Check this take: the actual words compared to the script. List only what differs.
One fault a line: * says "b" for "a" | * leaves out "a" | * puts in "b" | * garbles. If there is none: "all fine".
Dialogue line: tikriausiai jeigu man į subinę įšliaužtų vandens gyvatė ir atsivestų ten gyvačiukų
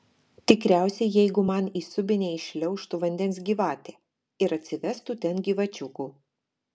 all fine